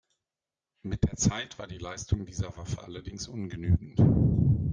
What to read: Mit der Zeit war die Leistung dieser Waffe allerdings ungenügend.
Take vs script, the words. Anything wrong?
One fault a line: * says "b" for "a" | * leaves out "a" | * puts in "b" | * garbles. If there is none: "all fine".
all fine